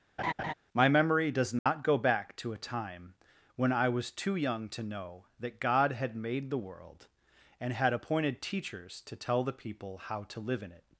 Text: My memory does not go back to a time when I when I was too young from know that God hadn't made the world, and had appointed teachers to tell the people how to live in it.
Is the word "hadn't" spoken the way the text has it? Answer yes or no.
no